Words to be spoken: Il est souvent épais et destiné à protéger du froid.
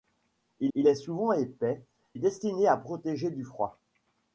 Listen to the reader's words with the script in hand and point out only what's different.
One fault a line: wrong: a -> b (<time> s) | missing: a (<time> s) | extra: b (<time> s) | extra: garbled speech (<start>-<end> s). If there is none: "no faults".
extra: il (0.7 s)
missing: et (1.8 s)